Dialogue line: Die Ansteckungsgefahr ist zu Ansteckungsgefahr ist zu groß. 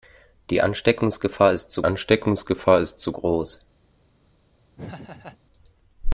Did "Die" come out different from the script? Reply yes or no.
no